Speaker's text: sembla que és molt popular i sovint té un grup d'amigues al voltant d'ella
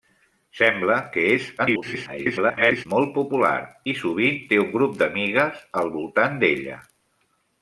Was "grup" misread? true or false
false